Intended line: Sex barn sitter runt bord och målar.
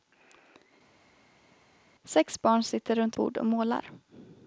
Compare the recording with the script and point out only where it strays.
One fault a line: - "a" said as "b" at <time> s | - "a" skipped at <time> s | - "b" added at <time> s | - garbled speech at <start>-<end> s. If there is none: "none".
none